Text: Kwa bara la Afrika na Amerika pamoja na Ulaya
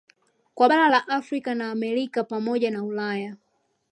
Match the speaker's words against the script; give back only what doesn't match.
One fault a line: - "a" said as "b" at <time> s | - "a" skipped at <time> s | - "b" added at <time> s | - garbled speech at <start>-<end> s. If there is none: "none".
none